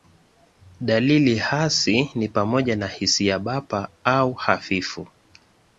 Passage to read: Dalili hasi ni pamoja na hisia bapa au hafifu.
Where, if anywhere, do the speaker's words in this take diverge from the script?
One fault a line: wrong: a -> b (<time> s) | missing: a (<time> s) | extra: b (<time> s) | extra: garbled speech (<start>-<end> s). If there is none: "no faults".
no faults